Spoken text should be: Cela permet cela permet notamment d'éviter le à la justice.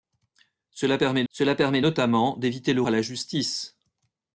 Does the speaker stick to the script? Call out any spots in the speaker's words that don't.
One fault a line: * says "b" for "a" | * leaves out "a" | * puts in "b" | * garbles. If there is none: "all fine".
all fine